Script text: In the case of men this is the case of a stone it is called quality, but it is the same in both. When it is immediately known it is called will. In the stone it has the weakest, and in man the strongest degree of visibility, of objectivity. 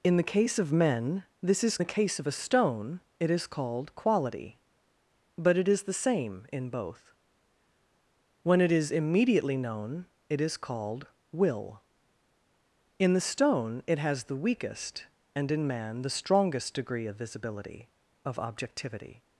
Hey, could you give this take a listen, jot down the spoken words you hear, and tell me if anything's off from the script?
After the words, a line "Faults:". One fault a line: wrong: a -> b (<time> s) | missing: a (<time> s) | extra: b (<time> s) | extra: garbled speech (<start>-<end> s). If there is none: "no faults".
In the case of men this is the case of a stone it is called quality, but it is the same in both. When it is immediately known it is called will. In the stone it has the weakest, and in man the strongest degree of visibility, of objectivity.
Faults:
no faults